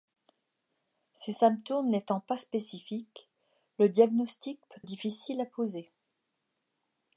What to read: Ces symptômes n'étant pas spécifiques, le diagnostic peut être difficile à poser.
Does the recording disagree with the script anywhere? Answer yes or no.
yes